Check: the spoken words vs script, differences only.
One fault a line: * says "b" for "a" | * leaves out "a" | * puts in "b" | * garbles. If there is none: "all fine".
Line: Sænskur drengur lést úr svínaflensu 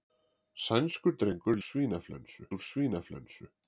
* says "svínaflensu" for "lést"